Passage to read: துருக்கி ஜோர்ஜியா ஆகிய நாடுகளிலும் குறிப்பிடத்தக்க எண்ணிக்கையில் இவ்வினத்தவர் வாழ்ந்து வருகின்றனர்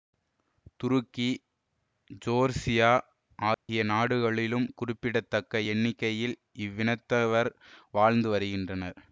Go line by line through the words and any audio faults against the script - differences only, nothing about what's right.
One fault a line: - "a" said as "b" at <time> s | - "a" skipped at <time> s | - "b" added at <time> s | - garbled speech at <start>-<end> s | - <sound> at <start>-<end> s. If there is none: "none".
- dropout at 3.5-3.7 s